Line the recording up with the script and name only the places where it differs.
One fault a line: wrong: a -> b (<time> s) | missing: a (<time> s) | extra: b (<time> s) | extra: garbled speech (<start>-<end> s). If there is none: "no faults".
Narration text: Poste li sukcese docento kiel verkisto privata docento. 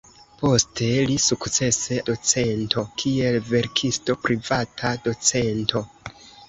no faults